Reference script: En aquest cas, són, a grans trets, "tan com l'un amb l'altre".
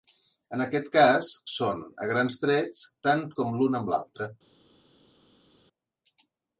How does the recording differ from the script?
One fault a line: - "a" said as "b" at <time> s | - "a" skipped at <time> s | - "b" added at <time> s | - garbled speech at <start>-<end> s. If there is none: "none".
none